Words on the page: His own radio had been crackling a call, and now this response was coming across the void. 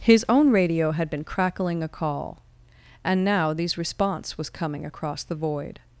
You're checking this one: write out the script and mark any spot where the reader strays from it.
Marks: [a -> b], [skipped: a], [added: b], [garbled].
His own radio had been crackling a call, and now [this -> these] response was coming across the void.